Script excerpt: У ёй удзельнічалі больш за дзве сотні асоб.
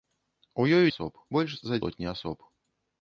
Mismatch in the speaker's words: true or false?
true